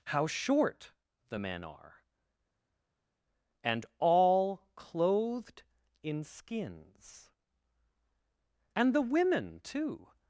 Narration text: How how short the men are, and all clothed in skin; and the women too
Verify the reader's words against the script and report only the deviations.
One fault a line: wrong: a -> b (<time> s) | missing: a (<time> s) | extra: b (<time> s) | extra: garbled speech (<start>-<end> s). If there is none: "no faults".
missing: how (0.3 s)
wrong: skin -> skins (6.2 s)